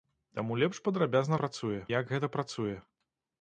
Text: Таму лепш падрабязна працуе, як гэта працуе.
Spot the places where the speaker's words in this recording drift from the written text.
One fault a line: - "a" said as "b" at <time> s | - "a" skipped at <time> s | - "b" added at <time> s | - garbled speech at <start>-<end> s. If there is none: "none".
none